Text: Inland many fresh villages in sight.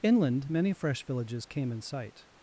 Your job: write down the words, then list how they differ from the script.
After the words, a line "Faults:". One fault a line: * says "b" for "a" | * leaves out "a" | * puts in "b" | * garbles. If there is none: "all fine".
Inland many fresh villages came in sight.
Faults:
* puts in "came"